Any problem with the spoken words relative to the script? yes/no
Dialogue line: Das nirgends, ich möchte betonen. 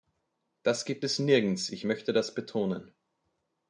yes